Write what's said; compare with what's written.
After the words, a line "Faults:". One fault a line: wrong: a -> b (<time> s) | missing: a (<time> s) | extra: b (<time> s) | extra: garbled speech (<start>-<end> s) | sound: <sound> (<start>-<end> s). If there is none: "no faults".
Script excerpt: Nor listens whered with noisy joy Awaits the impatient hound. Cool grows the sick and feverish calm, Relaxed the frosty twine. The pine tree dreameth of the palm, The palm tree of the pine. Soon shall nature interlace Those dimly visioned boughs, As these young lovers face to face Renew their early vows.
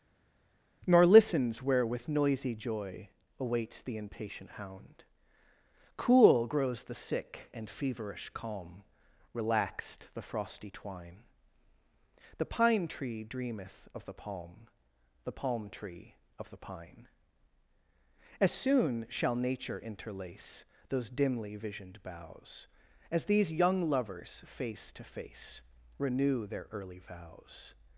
Nor listens where with noisy joy Awaits the impatient hound. Cool grows the sick and feverish calm, Relaxed the frosty twine. The pine tree dreameth of the palm, The palm tree of the pine. As soon shall nature interlace Those dimly visioned boughs, As these young lovers face to face Renew their early vows.
Faults:
wrong: whered -> where (1.6 s)
extra: As (18.4 s)